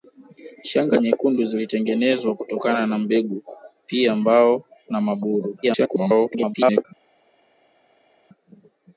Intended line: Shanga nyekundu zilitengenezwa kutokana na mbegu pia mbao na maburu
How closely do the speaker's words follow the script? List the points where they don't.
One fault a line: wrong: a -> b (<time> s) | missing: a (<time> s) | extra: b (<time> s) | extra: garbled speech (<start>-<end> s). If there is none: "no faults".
extra: garbled speech (5.6-6.9 s)